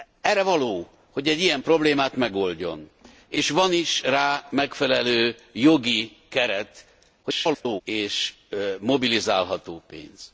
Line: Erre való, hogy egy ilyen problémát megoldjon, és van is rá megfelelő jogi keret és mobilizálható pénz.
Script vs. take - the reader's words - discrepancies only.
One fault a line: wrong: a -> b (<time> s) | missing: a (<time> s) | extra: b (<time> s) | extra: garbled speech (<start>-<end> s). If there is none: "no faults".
extra: garbled speech (7.2-7.8 s)